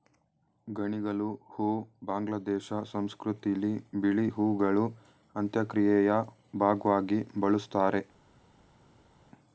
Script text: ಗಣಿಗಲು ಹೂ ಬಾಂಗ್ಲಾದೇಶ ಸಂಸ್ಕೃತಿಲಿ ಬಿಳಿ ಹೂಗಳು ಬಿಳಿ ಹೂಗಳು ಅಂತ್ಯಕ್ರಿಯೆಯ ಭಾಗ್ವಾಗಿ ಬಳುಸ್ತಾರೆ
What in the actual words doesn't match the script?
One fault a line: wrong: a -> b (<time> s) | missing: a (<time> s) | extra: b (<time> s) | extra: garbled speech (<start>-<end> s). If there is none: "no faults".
missing: ಬಿಳಿ ಹೂಗಳು (4.8 s)